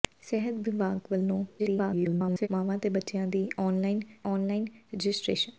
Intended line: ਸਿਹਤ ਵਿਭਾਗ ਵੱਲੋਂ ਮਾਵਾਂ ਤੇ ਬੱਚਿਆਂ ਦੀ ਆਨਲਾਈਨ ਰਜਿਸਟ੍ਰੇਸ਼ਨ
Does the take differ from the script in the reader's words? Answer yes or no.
yes